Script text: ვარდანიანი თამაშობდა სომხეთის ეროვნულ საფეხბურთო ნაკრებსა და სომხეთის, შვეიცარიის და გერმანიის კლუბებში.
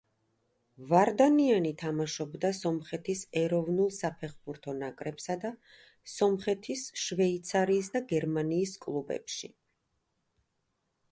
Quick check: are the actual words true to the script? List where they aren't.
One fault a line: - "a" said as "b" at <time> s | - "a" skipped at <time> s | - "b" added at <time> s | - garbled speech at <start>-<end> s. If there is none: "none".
none